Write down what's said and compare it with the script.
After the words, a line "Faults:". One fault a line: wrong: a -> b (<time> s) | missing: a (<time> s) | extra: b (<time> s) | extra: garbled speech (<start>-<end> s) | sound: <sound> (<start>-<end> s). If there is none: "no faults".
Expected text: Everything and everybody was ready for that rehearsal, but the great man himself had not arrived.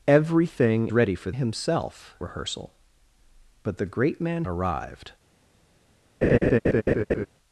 Everything ready for himself rehearsal, but the great man arrived.
Faults:
missing: and everybody was (0.9 s)
wrong: that -> himself (1.3 s)
missing: himself had not (4.4 s)
sound: laugh (6.2-7.3 s)